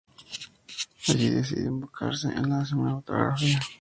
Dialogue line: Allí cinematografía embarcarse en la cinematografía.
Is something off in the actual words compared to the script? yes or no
yes